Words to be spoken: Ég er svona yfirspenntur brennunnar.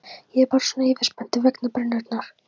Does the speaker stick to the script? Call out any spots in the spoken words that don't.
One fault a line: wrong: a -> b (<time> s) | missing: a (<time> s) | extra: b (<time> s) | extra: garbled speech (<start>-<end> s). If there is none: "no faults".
extra: bara (0.5 s)
extra: vegna (1.5 s)